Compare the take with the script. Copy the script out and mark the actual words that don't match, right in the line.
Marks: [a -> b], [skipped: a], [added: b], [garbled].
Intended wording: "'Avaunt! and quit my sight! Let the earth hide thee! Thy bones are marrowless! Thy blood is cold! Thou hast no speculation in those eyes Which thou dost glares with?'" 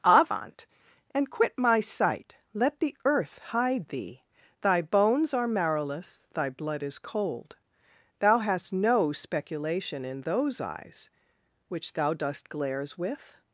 "'Avaunt! and quit my sight! Let the earth hide thee! Thy bones are marrowless! Thy blood is cold! Thou hast no speculation in those eyes Which thou dost glares with?'"